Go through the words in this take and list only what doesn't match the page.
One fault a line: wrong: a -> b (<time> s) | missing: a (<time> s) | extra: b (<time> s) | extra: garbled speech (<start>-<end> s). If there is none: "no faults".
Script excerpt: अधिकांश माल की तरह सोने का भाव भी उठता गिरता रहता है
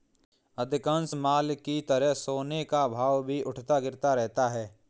no faults